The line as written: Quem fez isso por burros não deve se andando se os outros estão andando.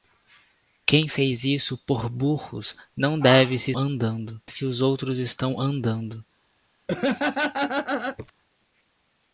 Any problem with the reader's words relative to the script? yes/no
no